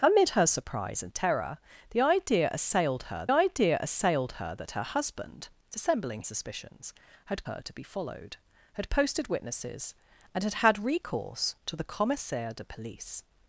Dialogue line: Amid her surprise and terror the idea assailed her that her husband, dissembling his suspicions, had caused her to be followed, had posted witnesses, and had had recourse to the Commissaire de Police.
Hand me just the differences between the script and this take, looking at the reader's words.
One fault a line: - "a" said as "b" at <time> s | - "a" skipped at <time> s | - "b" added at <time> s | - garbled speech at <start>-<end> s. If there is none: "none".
- "idea assailed her" added at 3.3 s
- "his" skipped at 6.2 s
- "caused" skipped at 7.4 s